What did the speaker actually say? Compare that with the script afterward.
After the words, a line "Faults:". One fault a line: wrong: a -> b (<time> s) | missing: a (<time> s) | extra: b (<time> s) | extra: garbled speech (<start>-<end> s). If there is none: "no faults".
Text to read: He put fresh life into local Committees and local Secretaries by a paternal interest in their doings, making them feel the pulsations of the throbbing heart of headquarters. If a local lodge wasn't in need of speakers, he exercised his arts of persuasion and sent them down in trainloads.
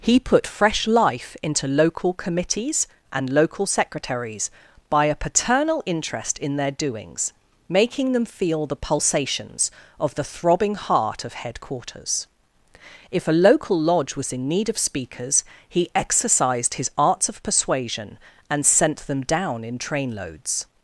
He put fresh life into local Committees and local Secretaries by a paternal interest in their doings, making them feel the pulsations of the throbbing heart of headquarters. If a local lodge was in need of speakers, he exercised his arts of persuasion and sent them down in trainloads.
Faults:
wrong: wasn't -> was (14.2 s)